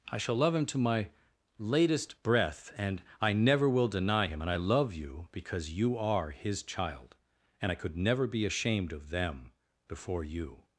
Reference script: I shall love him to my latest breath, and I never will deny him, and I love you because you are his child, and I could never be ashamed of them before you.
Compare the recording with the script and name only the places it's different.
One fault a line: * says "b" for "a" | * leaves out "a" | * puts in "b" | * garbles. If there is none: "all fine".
all fine